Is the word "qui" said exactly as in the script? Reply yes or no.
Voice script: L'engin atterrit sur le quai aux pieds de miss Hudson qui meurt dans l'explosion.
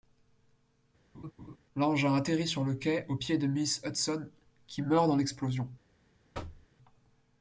yes